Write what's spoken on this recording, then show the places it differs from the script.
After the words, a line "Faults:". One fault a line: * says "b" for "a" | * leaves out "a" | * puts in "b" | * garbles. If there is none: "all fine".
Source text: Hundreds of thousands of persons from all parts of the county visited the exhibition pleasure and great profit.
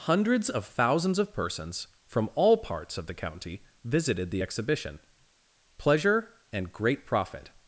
Hundreds of thousands of persons from all parts of the county visited the exhibition pleasure and great profit.
Faults:
all fine